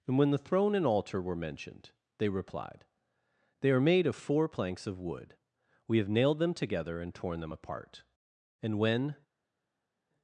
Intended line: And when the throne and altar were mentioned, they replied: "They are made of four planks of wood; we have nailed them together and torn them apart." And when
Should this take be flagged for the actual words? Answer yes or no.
no